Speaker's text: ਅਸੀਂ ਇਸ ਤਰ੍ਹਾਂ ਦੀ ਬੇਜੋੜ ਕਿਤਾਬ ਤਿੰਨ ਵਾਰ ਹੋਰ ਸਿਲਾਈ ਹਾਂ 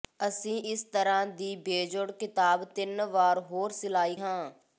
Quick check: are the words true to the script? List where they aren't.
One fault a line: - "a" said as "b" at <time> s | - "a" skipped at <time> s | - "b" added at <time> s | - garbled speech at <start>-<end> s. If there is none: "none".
none